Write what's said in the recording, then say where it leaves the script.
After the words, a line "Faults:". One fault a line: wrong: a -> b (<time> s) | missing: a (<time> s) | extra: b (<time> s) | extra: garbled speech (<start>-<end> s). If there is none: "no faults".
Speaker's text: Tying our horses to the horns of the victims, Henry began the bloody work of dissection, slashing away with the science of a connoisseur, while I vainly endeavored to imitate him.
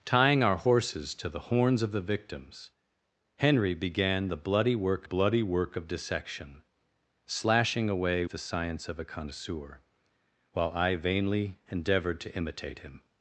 Tying our horses to the horns of the victims, Henry began the bloody work bloody work of dissection, slashing away the science of a connoisseur, while I vainly endeavored to imitate him.
Faults:
extra: bloody work (5.0 s)
missing: with (8.2 s)